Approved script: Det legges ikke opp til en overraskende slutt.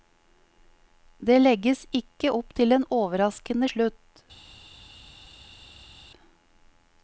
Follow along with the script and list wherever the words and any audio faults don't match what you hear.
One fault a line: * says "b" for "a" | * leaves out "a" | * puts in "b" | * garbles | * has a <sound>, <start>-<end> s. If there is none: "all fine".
all fine